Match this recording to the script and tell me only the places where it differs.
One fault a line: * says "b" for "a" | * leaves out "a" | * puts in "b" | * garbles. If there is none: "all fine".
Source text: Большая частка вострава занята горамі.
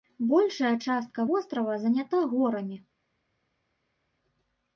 all fine